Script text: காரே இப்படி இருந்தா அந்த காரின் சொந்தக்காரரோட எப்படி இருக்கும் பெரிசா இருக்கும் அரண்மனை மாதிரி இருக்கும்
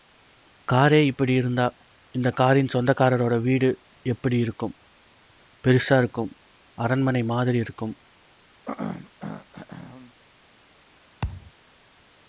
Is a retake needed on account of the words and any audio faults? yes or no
yes